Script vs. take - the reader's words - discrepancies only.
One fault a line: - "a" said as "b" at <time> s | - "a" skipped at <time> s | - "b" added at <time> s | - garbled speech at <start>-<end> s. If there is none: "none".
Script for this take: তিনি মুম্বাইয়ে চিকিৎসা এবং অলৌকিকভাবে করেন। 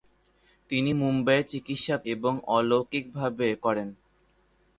none